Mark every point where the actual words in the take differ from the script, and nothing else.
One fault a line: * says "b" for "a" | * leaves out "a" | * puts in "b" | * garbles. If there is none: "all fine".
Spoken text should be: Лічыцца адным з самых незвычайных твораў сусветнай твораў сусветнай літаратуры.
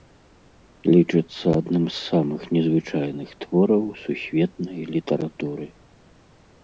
* leaves out "твораў сусветнай"